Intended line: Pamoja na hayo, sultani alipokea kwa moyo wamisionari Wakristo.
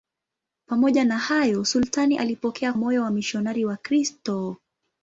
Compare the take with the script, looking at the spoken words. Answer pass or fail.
fail